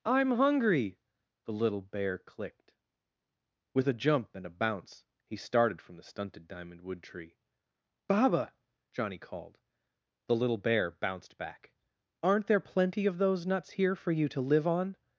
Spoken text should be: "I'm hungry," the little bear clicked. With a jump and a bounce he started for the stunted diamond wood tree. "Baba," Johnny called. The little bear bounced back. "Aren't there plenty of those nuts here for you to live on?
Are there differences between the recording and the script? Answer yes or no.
yes